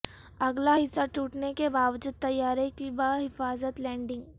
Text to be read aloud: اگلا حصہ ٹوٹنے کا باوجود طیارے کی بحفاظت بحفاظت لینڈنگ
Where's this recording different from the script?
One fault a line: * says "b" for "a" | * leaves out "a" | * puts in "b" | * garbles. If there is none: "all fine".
* says "کے" for "کا"
* leaves out "بحفاظت"